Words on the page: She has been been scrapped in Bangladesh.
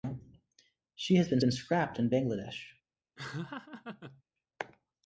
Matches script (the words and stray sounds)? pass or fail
fail